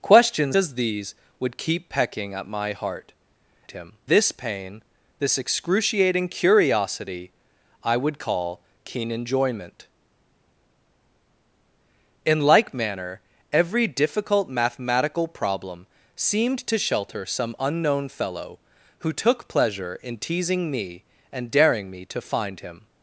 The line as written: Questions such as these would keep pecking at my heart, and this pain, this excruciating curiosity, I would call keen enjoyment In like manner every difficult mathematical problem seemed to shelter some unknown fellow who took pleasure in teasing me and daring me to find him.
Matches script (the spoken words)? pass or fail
fail